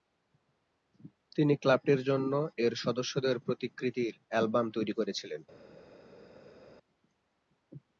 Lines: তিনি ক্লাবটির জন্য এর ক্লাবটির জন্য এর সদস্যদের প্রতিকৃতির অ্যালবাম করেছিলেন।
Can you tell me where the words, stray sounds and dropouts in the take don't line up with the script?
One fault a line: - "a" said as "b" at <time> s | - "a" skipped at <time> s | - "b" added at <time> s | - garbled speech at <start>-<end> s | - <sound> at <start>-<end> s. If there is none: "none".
- "ক্লাবটির জন্য এর" skipped at 2.7 s
- "তৈরি" added at 4.7 s